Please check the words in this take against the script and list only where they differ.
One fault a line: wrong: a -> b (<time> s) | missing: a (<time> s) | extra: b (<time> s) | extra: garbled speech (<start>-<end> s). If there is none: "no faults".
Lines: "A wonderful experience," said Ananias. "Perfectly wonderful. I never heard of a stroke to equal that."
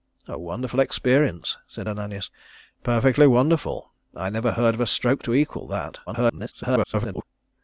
extra: garbled speech (6.1-7.2 s)